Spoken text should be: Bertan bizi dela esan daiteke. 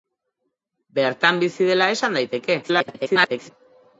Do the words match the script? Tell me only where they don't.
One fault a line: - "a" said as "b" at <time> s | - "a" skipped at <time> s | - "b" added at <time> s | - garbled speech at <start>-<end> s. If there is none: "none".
- garbled speech at 2.6-3.5 s